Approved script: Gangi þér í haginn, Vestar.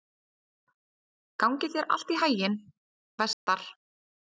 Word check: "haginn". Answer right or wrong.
right